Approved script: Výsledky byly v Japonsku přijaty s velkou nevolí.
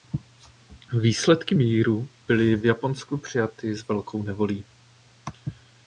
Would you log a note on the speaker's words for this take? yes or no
yes